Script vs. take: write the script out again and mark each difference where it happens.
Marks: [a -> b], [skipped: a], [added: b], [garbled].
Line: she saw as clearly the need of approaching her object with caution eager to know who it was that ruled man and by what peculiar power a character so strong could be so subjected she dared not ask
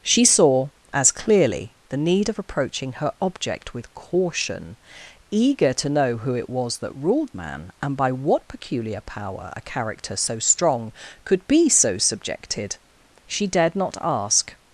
she saw as clearly the need of approaching her object with caution eager to know who it was that ruled man and by what peculiar power a character so strong could be so subjected she dared not ask